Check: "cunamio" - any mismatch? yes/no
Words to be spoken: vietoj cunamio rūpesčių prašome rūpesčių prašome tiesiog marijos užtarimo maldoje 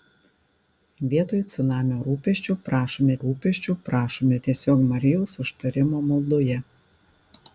no